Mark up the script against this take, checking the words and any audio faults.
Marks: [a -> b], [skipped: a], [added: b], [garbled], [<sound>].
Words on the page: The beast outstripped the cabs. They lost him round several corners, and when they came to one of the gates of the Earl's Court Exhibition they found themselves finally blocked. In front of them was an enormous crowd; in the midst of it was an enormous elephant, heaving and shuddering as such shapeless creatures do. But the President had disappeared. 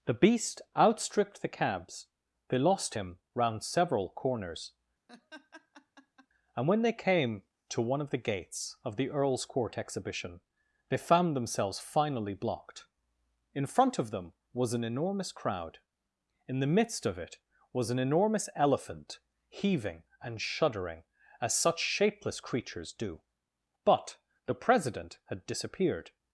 The beast outstripped the cabs. They lost him round several corners, [laugh] and when they came to one of the gates of the Earl's Court Exhibition they found themselves finally blocked. In front of them was an enormous crowd; in the midst of it was an enormous elephant, heaving and shuddering as such shapeless creatures do. But the President had disappeared.